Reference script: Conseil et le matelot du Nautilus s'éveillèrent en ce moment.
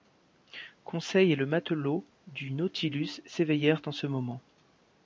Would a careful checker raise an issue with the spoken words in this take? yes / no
no